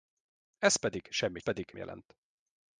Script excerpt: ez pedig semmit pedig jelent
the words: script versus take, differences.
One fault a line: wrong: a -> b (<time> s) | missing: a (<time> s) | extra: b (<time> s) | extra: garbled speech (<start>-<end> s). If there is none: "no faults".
no faults